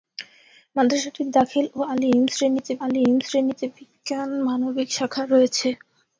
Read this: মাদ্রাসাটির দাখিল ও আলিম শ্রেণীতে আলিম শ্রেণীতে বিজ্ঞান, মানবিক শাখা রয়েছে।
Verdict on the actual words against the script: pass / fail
pass